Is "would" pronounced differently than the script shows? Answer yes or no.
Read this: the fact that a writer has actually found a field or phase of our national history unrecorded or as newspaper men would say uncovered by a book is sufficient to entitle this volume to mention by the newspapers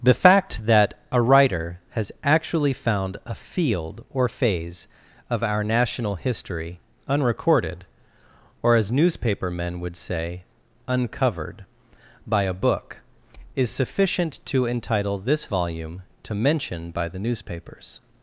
no